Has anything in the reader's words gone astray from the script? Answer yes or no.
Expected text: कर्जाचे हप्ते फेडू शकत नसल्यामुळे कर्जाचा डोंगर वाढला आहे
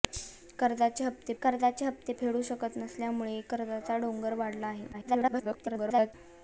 yes